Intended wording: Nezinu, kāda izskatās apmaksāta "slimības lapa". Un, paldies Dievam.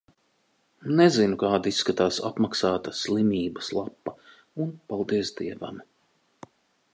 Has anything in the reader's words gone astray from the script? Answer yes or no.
no